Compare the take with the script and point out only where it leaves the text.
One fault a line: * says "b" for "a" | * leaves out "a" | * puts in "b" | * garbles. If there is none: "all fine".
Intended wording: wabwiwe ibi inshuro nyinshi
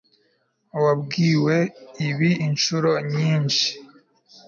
all fine